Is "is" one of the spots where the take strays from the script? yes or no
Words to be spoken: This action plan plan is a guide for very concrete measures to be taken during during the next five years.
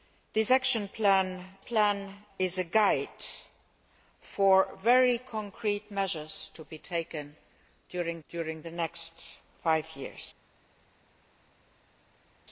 no